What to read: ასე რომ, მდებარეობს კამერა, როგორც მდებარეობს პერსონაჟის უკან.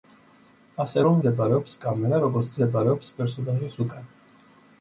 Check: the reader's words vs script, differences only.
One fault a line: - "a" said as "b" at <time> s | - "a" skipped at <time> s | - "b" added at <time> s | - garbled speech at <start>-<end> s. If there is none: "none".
none